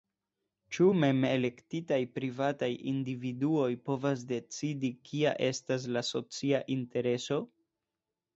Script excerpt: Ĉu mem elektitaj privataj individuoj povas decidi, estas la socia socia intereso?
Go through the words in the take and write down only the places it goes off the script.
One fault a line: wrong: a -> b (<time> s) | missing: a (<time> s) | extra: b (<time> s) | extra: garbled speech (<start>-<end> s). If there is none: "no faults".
extra: kia (5.1 s)
missing: socia (6.6 s)